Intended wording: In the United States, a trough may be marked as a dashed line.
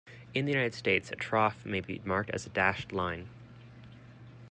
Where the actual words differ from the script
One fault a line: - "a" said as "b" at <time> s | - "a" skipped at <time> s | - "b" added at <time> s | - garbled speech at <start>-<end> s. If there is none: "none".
none